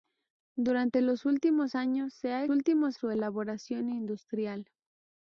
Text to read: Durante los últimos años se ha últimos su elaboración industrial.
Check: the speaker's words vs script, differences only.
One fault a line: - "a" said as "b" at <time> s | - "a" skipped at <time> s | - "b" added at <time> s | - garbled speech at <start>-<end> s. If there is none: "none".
none